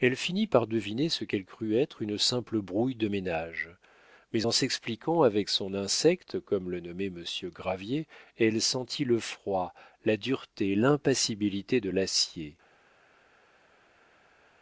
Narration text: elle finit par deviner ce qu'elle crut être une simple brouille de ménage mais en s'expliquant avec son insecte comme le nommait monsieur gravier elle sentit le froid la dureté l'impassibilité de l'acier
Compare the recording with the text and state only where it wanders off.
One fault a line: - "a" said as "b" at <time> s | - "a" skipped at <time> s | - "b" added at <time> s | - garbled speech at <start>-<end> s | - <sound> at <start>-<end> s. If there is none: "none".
none